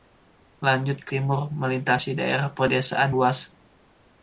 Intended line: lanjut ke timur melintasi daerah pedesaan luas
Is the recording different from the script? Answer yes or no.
no